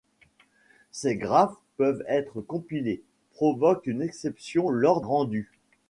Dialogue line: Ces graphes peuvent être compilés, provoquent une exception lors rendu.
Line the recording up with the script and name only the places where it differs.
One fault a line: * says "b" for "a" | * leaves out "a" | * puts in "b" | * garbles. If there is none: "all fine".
all fine